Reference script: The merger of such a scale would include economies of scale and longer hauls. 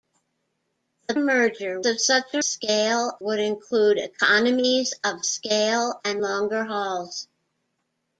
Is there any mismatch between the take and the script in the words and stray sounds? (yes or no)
no